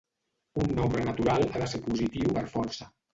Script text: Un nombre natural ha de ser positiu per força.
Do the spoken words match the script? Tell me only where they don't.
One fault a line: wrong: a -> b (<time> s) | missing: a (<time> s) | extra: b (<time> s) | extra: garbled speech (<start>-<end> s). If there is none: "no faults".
no faults